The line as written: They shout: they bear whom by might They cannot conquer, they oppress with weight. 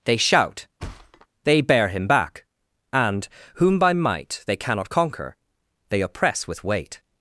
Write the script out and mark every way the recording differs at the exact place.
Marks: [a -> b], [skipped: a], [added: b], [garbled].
They shout: they bear [added: him back and] whom by might They cannot conquer, they oppress with weight.